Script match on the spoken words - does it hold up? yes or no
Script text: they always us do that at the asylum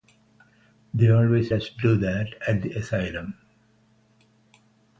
yes